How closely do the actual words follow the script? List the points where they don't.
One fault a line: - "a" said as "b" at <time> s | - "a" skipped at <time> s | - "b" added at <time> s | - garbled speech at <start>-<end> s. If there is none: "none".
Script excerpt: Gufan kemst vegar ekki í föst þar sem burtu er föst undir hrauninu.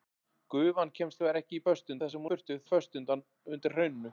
none